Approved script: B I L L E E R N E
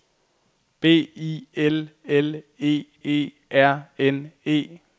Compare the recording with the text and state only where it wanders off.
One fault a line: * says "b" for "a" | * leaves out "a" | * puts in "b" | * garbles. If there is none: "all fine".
all fine